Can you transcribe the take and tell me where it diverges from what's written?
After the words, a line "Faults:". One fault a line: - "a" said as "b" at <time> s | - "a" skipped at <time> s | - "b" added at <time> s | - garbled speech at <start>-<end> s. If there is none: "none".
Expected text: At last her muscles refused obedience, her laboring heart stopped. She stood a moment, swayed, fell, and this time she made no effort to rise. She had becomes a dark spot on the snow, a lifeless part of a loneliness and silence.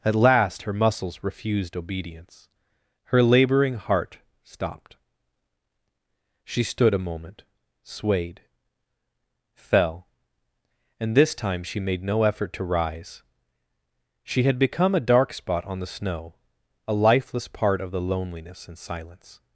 At last her muscles refused obedience, her laboring heart stopped. She stood a moment, swayed, fell, and this time she made no effort to rise. She had become a dark spot on the snow, a lifeless part of the loneliness and silence.
Faults:
- "becomes" said as "become" at 14.6 s
- "a" said as "the" at 17.9 s